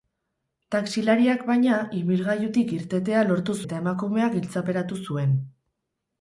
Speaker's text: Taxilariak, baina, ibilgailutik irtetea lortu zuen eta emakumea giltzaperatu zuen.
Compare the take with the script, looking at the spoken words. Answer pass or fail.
fail